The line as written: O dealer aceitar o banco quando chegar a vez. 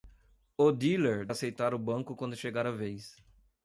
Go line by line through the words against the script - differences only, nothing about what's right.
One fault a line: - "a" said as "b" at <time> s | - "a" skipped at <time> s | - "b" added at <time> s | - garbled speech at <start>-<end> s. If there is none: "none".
none